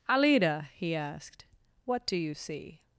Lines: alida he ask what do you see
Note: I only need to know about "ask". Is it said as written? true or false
false